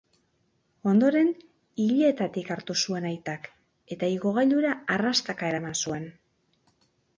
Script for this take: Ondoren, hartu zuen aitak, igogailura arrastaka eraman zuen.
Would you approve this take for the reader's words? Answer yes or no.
no